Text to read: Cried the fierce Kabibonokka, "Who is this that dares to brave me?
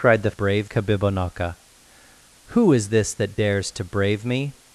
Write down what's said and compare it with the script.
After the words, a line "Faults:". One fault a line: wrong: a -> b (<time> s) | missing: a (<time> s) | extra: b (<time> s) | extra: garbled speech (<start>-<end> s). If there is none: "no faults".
Cried the brave Kabibonokka, "Who is this that dares to brave me?
Faults:
wrong: fierce -> brave (0.3 s)